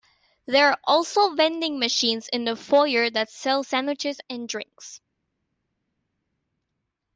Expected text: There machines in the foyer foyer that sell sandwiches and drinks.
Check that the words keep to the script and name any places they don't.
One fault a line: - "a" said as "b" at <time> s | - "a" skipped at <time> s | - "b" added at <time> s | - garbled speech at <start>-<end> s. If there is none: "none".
- "are also vending" added at 0.7 s
- "foyer" skipped at 3.1 s